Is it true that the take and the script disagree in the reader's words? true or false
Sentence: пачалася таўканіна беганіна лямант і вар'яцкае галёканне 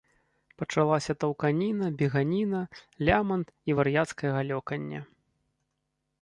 false